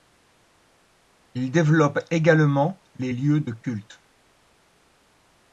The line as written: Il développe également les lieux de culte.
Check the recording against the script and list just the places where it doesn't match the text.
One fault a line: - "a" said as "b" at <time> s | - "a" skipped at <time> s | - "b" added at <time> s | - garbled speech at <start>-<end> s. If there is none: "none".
none